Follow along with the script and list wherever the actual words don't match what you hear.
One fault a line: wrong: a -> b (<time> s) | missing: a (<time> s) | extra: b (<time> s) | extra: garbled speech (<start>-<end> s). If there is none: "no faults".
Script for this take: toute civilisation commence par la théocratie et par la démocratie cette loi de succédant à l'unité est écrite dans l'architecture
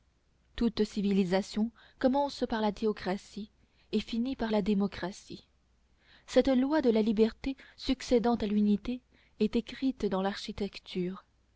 extra: finit (4.0 s)
extra: la liberté (6.9 s)